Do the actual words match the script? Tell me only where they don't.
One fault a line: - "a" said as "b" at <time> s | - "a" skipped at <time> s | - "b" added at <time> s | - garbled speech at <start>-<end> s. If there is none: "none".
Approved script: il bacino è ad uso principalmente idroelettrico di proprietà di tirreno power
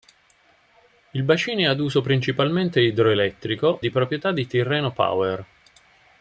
none